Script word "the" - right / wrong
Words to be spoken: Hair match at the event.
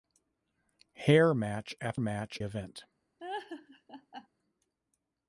wrong